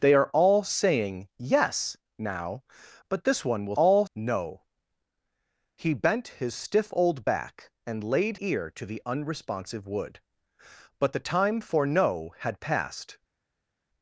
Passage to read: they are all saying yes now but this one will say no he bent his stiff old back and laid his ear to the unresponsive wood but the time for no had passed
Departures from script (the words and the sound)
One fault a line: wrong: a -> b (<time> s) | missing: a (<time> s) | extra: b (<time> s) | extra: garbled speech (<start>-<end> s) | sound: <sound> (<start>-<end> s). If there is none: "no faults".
wrong: say -> all (3.8 s)
missing: his (8.4 s)